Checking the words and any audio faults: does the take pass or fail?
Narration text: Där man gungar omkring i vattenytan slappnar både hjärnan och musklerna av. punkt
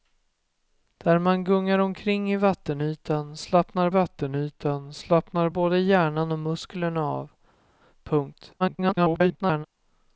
fail